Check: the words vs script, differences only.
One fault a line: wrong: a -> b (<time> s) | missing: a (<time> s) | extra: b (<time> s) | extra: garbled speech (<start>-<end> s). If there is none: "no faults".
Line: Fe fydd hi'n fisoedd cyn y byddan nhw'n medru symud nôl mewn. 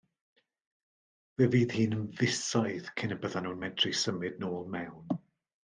no faults